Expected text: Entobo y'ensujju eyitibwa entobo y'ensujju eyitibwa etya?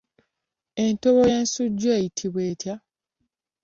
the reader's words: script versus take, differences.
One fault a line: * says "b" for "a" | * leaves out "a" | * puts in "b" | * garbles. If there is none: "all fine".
* leaves out "entobo y'ensujju eyitibwa"